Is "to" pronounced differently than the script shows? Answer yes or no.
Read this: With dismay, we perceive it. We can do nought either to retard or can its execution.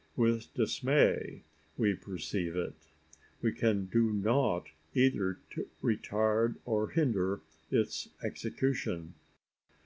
no